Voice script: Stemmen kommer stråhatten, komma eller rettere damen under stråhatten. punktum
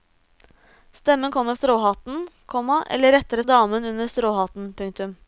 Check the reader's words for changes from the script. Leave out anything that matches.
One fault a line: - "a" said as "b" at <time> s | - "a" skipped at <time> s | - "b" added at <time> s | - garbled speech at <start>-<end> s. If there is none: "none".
none